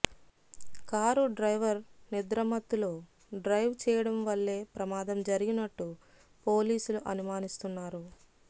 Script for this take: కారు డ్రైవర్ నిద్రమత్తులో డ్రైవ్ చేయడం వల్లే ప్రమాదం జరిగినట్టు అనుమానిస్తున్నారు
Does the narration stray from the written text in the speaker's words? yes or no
yes